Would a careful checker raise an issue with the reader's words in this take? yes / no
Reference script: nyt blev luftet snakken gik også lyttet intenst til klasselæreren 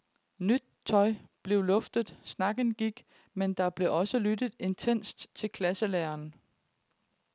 yes